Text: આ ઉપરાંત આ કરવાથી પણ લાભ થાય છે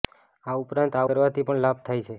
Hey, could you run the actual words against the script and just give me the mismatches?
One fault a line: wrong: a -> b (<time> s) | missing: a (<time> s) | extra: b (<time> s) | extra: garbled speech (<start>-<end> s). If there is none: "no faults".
no faults